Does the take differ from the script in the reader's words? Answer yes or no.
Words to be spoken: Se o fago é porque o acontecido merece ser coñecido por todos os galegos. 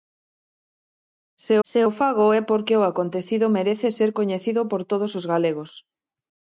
yes